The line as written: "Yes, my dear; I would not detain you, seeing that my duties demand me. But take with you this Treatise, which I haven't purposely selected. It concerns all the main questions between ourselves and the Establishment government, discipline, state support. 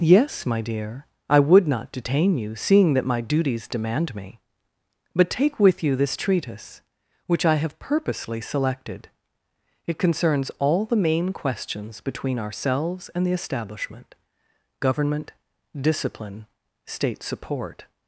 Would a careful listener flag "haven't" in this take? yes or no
yes